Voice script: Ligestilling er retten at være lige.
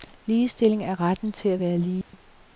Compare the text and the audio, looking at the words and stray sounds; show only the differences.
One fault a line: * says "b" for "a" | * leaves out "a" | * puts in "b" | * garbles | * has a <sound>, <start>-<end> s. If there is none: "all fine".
* puts in "til"
* has a dropout, 2.0-2.1 s